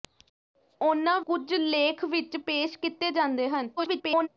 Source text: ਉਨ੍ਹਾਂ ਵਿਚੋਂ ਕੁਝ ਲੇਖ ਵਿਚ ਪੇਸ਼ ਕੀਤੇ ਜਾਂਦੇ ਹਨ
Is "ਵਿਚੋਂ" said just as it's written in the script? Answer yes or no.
no